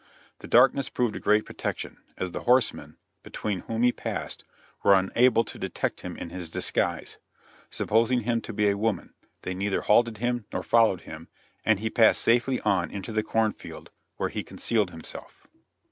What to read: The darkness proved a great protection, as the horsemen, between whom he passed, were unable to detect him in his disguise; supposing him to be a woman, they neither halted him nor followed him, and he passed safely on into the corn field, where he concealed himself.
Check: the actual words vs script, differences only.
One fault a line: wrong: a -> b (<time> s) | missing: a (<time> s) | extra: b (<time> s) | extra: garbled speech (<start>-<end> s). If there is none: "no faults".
no faults